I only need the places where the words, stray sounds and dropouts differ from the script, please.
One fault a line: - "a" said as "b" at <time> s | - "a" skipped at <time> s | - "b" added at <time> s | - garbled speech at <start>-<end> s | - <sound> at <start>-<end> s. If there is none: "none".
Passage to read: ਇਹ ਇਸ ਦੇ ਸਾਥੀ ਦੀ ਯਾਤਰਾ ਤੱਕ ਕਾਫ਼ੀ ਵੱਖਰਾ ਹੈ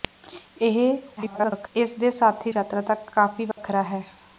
- garbled speech at 1.2-1.7 s
- "ਦੀ" skipped at 2.5 s
- dropout at 3.5-3.6 s